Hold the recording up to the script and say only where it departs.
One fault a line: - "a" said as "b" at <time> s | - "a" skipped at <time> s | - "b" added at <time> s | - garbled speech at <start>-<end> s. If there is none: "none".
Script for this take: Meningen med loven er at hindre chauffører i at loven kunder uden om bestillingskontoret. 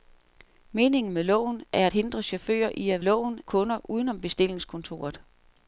none